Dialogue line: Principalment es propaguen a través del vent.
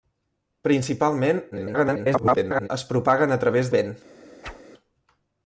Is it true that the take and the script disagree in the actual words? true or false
true